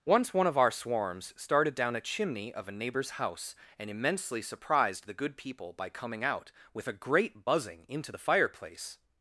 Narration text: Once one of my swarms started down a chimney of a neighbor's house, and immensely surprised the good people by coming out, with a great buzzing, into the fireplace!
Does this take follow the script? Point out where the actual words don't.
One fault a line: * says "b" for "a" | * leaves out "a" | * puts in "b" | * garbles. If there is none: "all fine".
* says "our" for "my"